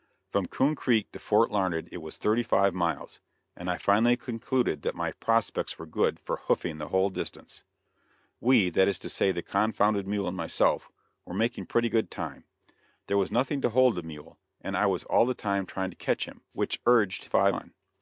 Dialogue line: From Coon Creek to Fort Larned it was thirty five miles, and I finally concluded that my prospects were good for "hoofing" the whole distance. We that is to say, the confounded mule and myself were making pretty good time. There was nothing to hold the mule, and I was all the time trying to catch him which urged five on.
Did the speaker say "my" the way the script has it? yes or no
yes